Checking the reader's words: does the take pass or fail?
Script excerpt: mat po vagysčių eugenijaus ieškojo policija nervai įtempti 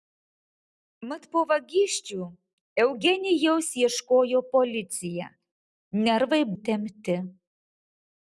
pass